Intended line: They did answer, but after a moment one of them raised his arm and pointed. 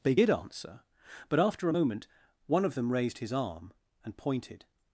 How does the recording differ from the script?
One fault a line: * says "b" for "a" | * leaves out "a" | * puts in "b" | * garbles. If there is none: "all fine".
all fine